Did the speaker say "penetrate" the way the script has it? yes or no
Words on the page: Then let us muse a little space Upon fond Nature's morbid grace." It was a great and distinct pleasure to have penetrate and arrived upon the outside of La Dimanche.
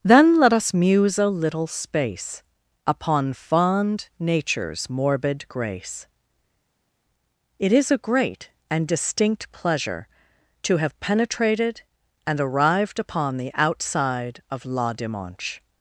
no